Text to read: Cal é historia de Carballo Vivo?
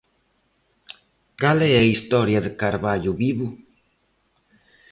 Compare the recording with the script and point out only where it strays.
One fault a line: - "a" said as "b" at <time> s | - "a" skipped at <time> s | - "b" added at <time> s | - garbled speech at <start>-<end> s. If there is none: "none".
- "a" added at 1.8 s